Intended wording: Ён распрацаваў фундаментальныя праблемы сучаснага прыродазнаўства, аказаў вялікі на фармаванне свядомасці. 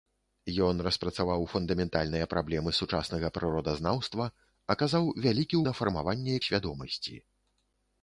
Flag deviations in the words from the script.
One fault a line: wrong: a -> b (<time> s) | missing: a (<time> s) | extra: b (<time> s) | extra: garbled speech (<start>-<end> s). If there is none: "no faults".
no faults